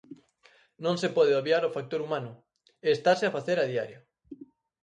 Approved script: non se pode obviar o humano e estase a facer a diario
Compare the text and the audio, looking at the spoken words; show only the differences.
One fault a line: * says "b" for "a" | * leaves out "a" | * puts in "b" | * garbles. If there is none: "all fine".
* puts in "factor"